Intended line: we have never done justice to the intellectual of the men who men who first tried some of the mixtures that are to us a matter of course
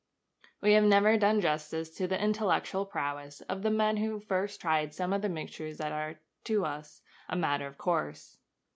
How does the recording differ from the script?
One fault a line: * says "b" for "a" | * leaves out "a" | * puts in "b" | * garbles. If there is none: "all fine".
* puts in "prowess"
* leaves out "men who"